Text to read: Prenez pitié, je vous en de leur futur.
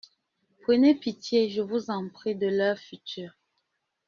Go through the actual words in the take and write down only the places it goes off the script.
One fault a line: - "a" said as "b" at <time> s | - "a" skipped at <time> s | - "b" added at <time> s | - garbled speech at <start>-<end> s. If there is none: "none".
- "prie" added at 2.1 s